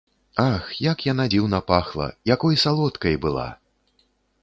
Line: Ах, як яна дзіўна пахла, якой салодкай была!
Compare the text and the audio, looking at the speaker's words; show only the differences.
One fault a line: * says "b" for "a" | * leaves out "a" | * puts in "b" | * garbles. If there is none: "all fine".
all fine